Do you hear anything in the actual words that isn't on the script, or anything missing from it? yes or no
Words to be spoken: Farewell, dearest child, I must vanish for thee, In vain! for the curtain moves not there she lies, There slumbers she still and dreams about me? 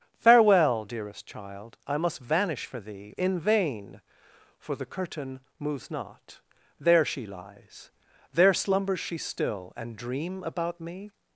yes